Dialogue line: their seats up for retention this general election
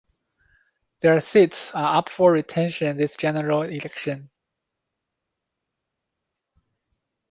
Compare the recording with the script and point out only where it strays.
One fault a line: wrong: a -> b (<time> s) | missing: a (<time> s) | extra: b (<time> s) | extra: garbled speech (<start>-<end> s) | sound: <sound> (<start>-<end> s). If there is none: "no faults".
extra: are (1.8 s)